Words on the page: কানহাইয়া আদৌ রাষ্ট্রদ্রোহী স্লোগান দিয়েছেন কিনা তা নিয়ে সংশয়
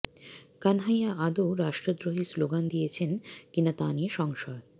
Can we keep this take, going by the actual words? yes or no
yes